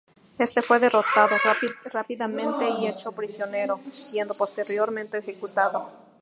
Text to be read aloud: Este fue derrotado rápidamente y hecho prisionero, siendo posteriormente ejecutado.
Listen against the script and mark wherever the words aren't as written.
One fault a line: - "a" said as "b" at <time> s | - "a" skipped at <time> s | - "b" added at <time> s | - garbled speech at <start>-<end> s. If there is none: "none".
none